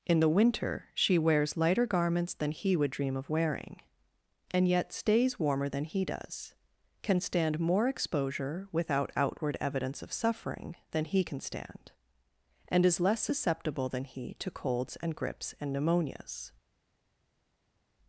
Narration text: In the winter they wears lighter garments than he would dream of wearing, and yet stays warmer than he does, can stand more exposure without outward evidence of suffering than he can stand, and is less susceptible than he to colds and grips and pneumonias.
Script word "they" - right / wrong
wrong